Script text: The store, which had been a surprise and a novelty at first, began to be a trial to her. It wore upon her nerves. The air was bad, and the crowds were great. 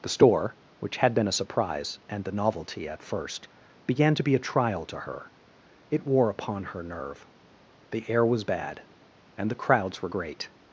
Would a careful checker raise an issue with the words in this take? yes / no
yes